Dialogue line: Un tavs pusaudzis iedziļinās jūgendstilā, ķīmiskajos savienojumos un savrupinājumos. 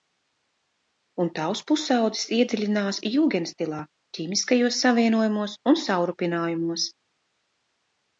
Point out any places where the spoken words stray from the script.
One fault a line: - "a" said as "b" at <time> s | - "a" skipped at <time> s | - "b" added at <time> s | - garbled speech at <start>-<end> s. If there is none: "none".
none